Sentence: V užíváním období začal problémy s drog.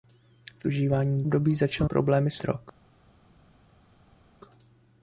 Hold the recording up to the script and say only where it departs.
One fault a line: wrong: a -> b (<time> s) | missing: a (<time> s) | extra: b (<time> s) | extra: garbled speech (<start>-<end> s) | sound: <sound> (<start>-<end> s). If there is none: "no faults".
no faults